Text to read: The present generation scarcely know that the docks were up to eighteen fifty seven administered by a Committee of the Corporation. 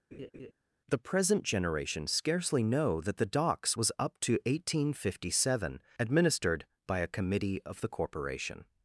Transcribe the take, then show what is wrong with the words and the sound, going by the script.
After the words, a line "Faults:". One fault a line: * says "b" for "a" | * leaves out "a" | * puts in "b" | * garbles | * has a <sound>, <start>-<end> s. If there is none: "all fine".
The present generation scarcely know that the docks was up to eighteen fifty seven administered by a Committee of the Corporation.
Faults:
* has a laugh, 0.1-0.5 s
* says "was" for "were"